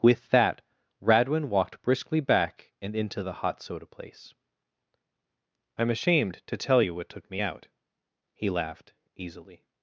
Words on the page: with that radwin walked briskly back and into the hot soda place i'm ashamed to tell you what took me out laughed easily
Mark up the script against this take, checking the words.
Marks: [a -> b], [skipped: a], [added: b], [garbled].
with that radwin walked briskly back and into the hot soda place i'm ashamed to tell you what took me out [added: he] laughed easily